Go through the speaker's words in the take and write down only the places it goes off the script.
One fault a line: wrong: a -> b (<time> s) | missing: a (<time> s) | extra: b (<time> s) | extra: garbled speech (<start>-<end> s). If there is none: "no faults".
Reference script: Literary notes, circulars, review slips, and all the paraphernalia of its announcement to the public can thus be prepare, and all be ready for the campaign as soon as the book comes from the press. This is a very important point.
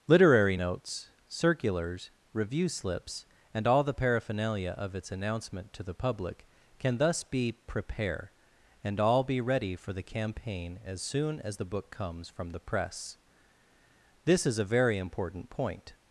no faults